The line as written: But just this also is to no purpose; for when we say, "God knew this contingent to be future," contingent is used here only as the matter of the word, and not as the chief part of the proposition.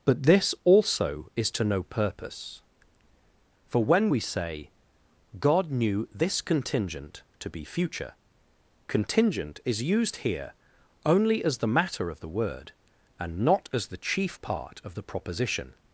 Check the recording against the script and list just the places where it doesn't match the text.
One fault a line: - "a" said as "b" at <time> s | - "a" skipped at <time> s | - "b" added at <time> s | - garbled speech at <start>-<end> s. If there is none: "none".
- "just" skipped at 0.2 s